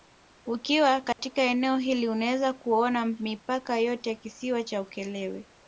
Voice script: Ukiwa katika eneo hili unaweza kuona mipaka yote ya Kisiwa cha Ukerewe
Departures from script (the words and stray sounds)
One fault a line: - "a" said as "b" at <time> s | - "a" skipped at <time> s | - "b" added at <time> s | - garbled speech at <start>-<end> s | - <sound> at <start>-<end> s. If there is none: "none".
- dropout at 1.1-1.2 s